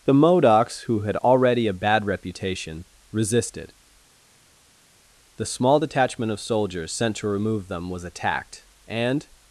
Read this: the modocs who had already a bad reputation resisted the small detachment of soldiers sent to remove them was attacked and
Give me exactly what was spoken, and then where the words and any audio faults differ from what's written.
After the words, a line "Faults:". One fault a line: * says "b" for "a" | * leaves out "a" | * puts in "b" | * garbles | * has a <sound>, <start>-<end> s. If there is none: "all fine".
the modocs who had already a bad reputation resisted the small detachment of soldiers sent to remove them was attacked and
Faults:
all fine